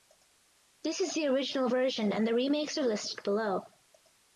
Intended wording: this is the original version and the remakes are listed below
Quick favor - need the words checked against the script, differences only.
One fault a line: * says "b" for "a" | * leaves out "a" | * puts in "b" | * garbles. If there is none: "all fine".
all fine